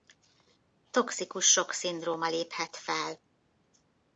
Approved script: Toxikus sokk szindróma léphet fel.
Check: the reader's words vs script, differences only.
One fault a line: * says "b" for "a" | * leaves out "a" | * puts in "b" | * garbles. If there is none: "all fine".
all fine